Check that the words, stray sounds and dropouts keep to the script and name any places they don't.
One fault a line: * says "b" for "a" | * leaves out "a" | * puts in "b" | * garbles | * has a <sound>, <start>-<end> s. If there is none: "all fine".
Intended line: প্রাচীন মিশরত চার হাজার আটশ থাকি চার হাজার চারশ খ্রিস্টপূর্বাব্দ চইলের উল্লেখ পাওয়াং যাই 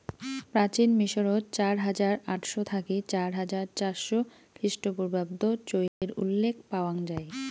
* has a dropout, 5.9-6.0 s